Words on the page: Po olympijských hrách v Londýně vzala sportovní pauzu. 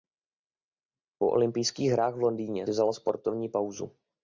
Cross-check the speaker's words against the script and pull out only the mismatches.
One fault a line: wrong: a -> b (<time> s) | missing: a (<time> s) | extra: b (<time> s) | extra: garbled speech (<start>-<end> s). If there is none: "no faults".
no faults